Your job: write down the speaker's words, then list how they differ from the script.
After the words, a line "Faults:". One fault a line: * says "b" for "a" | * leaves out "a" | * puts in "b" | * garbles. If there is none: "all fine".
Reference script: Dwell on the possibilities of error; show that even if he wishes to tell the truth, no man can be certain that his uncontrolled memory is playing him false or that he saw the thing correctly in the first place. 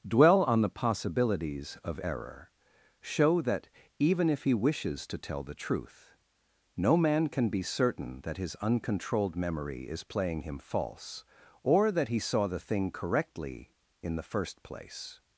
Dwell on the possibilities of error; show that even if he wishes to tell the truth, no man can be certain that his uncontrolled memory is playing him false or that he saw the thing correctly in the first place.
Faults:
all fine